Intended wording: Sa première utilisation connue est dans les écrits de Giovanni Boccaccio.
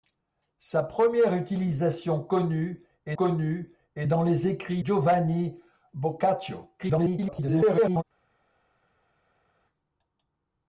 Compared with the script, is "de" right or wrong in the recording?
wrong